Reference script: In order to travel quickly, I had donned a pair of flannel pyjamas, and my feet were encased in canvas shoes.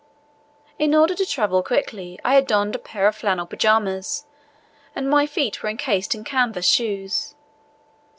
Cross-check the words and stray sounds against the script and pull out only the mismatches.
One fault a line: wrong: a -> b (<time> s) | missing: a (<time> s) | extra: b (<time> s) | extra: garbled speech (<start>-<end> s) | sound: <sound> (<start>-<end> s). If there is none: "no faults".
no faults